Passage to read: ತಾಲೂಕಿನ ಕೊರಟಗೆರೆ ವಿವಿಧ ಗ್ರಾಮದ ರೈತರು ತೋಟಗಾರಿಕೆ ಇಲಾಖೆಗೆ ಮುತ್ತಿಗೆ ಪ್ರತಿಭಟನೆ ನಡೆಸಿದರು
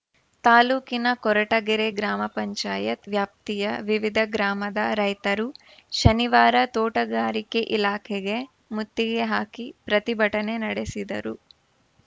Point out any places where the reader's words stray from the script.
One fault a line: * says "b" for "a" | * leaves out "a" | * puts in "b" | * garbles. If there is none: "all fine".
* puts in "ಗ್ರಾಮ ಪಂಚಾಯತ್ ವ್ಯಾಪ್ತಿಯ"
* puts in "ಶನಿವಾರ"
* puts in "ಹಾಕಿ"